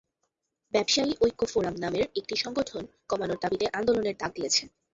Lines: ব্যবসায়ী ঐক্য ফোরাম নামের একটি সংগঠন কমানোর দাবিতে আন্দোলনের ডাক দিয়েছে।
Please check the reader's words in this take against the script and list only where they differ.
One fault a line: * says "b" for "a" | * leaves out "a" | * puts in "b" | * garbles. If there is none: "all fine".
all fine